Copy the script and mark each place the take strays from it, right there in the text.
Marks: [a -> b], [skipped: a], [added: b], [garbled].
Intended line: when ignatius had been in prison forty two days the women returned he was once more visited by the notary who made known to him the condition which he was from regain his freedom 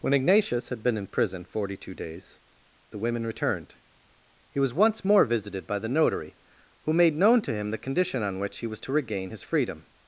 when ignatius had been in prison forty two days the women returned he was once more visited by the notary who made known to him the condition [added: on] which he was [from -> to] regain his freedom